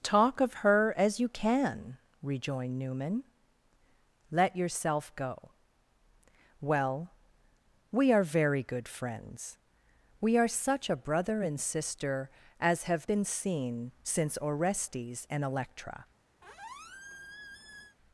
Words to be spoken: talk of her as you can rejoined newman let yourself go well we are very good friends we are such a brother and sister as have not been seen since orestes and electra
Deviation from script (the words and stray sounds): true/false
true